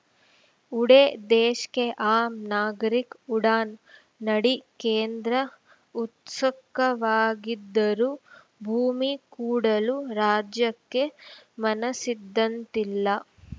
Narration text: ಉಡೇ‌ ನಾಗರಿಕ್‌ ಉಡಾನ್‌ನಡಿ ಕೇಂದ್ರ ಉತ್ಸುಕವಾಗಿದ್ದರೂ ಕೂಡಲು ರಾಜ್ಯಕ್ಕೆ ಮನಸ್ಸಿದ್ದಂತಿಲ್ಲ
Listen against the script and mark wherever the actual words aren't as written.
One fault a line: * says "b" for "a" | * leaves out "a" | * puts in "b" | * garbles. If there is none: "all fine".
* puts in "ದೇಶ್ ಕೆ ಆಮ್"
* puts in "ಭೂಮಿ"